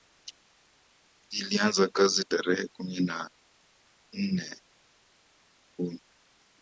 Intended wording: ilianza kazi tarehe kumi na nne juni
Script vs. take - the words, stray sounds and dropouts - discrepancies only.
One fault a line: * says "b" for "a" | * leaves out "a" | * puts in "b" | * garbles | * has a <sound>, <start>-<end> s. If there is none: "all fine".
all fine